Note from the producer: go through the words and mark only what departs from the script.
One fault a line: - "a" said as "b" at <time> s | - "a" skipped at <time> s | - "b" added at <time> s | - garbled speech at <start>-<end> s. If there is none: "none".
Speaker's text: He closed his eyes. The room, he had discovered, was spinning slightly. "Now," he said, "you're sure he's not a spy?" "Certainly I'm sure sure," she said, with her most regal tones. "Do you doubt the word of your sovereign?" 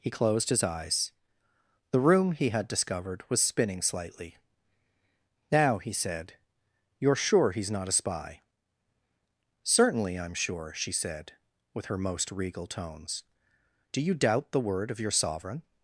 - "sure" skipped at 10.7 s